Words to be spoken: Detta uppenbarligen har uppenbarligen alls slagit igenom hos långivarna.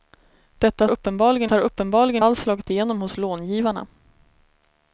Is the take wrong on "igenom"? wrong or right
right